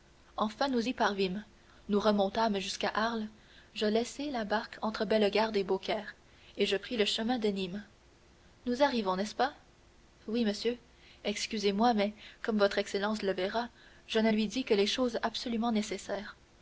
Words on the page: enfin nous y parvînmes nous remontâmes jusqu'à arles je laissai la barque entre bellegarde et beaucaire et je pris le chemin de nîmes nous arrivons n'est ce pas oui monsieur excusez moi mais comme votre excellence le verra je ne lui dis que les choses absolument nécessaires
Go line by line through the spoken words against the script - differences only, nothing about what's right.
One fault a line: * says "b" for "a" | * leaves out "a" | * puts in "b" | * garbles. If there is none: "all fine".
all fine